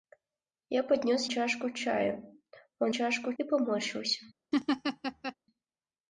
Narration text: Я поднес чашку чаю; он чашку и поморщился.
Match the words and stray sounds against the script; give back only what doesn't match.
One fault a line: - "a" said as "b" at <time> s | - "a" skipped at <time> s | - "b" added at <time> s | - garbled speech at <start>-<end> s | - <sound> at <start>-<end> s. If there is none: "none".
- laugh at 4.5-5.3 s